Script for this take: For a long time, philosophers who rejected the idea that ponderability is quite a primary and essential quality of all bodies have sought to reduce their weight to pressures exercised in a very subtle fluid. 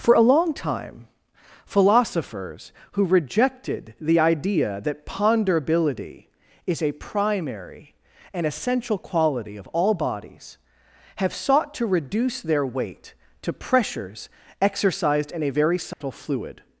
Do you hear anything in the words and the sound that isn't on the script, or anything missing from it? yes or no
yes